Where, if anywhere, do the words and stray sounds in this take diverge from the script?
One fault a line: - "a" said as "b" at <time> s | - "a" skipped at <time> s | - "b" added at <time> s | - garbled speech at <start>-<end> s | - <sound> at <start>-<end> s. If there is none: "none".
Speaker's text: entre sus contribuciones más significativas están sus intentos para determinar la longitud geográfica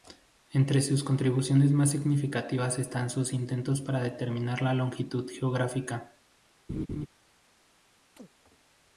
- laugh at 6.7-7.1 s
- chirp at 8.2-8.3 s